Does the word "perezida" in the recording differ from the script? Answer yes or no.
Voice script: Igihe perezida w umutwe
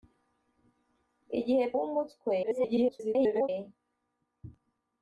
yes